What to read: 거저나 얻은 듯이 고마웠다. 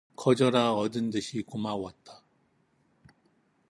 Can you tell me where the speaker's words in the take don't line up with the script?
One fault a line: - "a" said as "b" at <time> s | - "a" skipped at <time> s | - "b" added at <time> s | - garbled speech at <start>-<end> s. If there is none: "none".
none